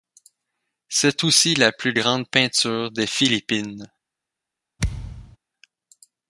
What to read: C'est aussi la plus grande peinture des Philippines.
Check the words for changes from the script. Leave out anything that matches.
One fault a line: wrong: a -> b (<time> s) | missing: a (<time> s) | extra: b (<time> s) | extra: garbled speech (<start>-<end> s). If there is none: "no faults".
no faults